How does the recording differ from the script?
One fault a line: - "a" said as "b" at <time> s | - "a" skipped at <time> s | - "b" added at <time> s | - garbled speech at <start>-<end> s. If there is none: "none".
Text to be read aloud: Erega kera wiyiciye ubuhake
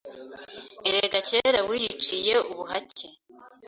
none